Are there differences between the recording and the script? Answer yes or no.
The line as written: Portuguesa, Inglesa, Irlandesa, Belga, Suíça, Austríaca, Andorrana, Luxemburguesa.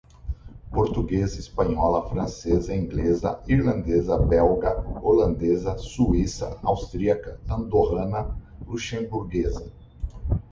yes